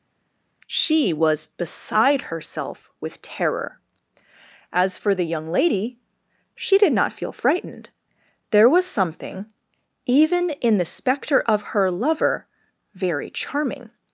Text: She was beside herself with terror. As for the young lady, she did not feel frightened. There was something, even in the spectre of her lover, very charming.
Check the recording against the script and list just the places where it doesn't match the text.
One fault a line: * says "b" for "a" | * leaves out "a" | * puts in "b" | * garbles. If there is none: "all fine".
all fine